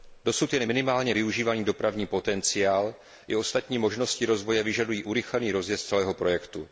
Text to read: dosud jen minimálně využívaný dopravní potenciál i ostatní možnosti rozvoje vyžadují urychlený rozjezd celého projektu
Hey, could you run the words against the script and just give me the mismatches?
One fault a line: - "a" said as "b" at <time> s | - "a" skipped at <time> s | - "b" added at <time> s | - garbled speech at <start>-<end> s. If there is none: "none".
none